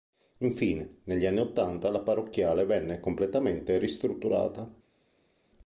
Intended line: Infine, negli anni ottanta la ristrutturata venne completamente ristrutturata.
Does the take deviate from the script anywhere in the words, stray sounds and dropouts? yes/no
yes